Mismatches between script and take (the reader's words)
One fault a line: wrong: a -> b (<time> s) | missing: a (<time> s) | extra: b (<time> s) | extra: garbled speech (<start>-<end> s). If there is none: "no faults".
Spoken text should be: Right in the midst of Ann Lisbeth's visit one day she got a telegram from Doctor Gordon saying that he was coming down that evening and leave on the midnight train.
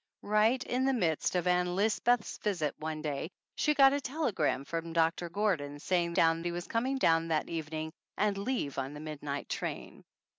wrong: that -> down (6.1 s)